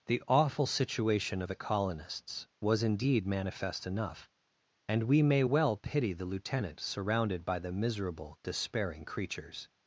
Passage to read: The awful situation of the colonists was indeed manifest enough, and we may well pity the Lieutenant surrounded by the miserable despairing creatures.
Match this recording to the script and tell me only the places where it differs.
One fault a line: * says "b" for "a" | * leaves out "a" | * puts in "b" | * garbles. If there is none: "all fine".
* leaves out "of"